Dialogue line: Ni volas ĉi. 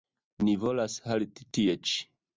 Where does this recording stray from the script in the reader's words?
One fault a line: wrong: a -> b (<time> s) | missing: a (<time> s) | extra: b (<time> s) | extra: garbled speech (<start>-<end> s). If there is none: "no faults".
extra: halti tie (1.1 s)